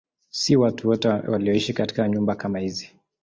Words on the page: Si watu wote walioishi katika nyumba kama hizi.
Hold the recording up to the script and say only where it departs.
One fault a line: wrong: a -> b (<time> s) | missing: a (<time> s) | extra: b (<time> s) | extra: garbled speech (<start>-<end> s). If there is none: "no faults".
no faults